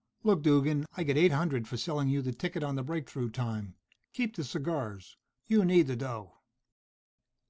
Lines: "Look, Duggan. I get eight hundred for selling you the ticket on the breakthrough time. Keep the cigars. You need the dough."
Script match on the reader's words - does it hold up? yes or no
yes